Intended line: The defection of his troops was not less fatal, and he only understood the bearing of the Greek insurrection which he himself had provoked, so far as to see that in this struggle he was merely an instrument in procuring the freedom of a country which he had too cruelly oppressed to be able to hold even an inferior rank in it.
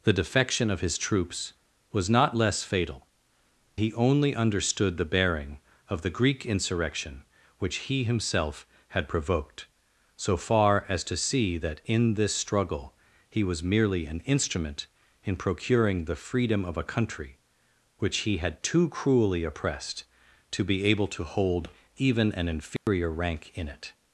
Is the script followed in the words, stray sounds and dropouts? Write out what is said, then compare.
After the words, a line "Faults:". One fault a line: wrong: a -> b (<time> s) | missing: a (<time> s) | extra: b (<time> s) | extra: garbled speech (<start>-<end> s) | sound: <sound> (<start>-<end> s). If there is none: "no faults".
The defection of his troops was not less fatal, he only understood the bearing of the Greek insurrection which he himself had provoked, so far as to see that in this struggle he was merely an instrument in procuring the freedom of a country which he had too cruelly oppressed to be able to hold even an inferior rank in it.
Faults:
missing: and (3.0 s)
sound: dropout (22.8-22.9 s)